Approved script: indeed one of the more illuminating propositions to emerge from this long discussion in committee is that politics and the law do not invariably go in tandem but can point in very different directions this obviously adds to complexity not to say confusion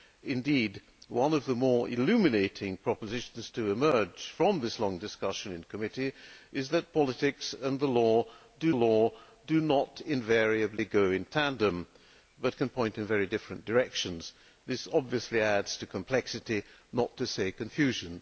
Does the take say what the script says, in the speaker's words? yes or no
no